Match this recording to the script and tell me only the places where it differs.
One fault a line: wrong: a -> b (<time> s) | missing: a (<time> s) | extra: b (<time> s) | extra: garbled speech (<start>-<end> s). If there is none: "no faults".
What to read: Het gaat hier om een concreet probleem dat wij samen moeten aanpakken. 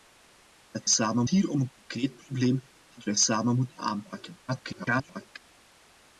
wrong: gaat -> samen (0.8 s)
extra: garbled speech (4.5-5.4 s)